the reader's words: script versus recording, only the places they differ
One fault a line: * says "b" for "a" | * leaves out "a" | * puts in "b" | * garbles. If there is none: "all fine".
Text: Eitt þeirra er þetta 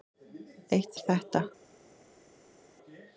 * leaves out "þeirra"